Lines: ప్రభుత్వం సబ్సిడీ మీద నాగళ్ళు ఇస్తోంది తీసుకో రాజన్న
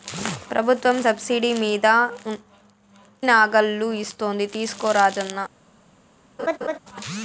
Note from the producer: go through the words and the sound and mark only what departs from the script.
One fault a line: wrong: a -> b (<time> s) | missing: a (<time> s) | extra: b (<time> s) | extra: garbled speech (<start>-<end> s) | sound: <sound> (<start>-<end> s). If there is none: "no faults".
sound: laugh (6.4-6.8 s)